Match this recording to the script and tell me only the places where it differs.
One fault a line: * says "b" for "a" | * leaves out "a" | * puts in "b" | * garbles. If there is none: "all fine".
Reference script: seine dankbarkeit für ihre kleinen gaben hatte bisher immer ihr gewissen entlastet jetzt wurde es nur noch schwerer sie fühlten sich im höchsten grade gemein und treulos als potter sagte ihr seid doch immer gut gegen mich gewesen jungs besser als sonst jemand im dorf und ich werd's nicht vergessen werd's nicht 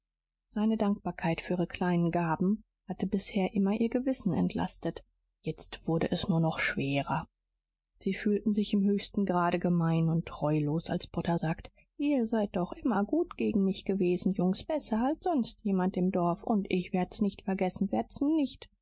all fine